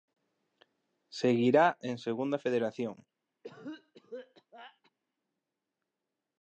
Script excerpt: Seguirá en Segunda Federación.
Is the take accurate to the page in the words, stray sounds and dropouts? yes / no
no